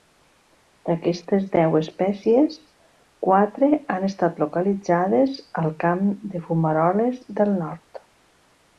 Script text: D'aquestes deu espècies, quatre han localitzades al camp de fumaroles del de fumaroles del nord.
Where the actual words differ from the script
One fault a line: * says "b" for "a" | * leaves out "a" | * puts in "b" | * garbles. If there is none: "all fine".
* puts in "estat"
* leaves out "de fumaroles del"